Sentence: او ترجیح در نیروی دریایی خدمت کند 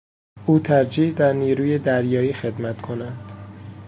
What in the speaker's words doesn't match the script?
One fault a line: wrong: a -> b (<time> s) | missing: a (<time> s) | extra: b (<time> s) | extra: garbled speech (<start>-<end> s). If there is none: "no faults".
no faults